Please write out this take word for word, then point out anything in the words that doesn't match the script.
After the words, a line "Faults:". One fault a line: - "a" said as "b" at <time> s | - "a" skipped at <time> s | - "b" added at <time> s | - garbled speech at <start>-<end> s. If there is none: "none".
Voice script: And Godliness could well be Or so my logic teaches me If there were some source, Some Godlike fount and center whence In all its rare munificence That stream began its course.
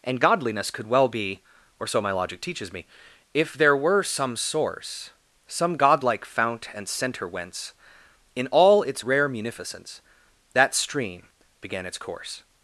And Godliness could well be Or so my logic teaches me If there were some source, Some Godlike fount and center whence In all its rare munificence That stream began its course.
Faults:
none